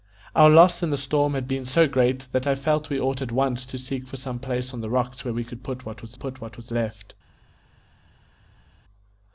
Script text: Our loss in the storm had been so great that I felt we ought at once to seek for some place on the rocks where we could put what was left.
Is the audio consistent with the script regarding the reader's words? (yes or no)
no